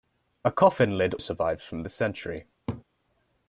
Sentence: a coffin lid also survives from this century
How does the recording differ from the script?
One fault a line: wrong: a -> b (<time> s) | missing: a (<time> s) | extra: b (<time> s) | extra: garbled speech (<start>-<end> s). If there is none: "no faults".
missing: also (1.1 s)